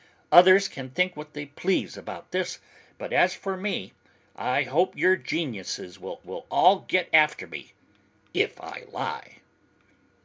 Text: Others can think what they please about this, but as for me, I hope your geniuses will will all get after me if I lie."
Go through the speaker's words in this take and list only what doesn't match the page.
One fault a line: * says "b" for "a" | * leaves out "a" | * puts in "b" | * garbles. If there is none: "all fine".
all fine